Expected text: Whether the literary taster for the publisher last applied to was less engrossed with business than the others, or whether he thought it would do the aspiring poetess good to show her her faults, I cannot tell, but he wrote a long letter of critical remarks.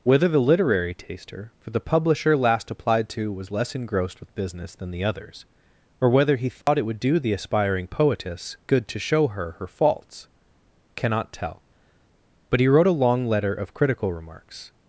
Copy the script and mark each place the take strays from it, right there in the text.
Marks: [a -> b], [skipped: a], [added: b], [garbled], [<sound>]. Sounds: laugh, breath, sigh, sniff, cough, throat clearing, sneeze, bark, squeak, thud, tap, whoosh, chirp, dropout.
Whether the literary taster for the publisher last applied to was less engrossed with business than the others, or whether he thought [dropout] it would do the aspiring poetess good to show her her faults, [skipped: I] cannot tell, but he wrote a long letter of critical remarks.